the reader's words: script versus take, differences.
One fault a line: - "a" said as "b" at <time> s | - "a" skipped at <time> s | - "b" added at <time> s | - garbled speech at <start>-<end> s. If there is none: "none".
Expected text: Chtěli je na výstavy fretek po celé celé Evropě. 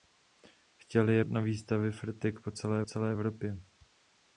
none